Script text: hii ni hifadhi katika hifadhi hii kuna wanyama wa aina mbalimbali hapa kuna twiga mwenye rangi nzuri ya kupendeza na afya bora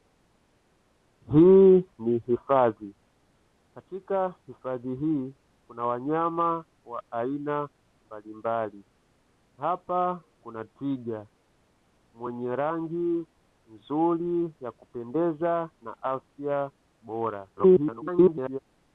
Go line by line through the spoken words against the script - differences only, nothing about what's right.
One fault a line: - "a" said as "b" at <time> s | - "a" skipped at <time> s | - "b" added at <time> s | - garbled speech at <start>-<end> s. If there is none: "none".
- garbled speech at 17.6-18.6 s